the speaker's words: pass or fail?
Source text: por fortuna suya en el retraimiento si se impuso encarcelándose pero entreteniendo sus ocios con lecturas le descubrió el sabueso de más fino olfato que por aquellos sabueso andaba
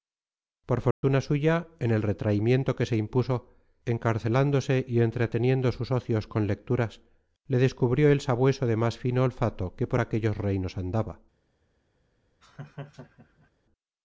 fail